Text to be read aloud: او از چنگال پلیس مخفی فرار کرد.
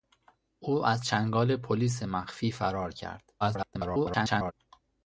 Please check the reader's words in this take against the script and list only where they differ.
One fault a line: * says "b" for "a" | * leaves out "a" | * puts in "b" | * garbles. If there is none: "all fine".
* garbles